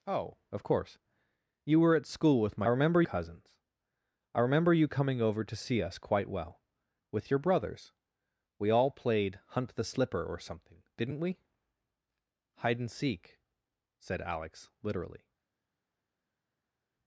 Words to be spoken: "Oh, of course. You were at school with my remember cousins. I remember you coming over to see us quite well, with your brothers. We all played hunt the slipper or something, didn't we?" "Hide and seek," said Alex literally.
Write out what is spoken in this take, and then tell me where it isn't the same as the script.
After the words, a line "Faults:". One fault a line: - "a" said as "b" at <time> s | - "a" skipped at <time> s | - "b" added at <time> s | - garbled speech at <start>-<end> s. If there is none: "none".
"Oh, of course. You were at school with my remember cousins. I remember you coming over to see us quite well, with your brothers. We all played hunt the slipper or something, didn't we?" "Hide and seek," said Alex literally.
Faults:
none